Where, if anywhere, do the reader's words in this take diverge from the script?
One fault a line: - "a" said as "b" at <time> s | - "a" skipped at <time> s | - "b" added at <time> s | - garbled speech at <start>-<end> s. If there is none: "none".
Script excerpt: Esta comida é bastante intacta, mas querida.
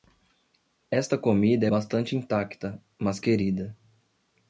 none